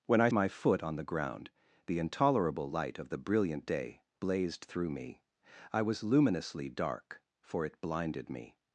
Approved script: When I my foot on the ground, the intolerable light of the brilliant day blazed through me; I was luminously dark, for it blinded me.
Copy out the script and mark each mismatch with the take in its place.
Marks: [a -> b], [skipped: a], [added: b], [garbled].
When I my foot on the ground, the intolerable light of the brilliant day blazed through me; I was luminously dark, for it blinded me.